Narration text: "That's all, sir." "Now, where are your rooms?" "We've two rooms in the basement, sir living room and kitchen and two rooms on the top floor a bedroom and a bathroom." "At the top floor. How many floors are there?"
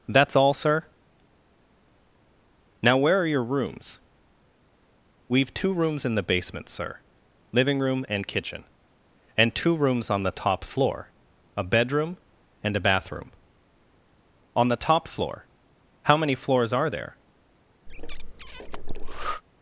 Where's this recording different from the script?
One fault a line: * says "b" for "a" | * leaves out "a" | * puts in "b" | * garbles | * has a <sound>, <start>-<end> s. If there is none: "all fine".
* says "On" for "At"
* has a breath, 17.9-19.4 s